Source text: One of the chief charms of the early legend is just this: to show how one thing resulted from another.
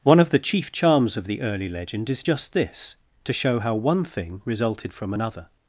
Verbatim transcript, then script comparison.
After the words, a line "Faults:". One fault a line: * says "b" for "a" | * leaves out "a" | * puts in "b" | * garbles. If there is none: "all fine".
One of the chief charms of the early legend is just this: to show how one thing resulted from another.
Faults:
all fine